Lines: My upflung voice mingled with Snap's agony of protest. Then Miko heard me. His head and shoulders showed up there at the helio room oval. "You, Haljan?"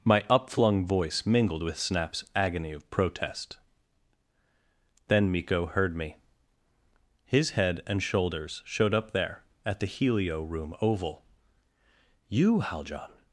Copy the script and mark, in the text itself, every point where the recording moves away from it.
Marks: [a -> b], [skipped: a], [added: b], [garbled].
My upflung voice mingled with Snap's agony of protest. Then Miko heard me. His head and shoulders showed up there at the helio room oval. "You, Haljan?"